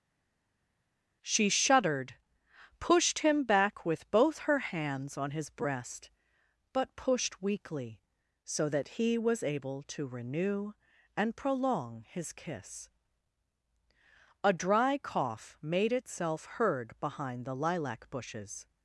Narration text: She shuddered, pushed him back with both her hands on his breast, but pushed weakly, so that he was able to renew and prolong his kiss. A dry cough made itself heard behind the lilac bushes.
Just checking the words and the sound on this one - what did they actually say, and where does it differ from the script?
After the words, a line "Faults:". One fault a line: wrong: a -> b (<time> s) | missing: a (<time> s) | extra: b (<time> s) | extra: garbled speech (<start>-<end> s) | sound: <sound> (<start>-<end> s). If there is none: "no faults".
She shuddered, pushed him back with both her hands on his breast, but pushed weakly, so that he was able to renew and prolong his kiss. A dry cough made itself heard behind the lilac bushes.
Faults:
no faults